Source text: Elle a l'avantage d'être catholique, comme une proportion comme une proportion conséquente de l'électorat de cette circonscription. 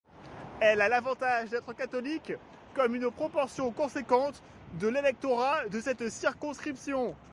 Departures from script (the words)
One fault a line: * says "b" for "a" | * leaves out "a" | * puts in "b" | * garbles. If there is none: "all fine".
* leaves out "comme une proportion"